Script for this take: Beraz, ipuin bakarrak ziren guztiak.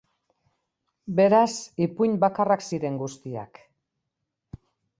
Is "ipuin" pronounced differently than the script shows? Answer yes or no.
no